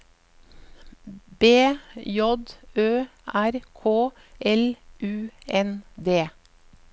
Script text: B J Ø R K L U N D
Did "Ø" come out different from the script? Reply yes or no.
no